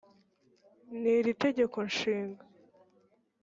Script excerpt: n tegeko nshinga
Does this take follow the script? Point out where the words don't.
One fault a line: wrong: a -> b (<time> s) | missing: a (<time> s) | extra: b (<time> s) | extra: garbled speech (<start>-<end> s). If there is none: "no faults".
extra: iri (1.2 s)